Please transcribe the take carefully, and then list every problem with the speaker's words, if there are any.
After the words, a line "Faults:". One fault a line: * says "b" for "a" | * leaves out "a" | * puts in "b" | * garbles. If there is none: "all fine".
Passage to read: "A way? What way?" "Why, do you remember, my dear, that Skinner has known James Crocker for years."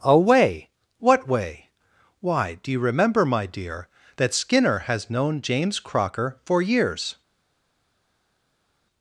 "A way? What way?" "Why, do you remember, my dear, that Skinner has known James Crocker for years."
Faults:
all fine